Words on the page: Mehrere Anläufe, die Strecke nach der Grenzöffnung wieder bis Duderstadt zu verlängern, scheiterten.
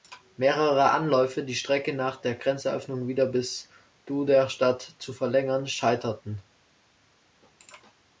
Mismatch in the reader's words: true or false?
false